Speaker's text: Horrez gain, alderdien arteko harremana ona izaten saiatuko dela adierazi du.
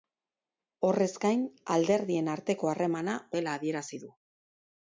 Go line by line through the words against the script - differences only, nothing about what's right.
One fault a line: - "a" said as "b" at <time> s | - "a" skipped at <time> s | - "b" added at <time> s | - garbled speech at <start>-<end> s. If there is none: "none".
- "ona izaten saiatuko" skipped at 3.2 s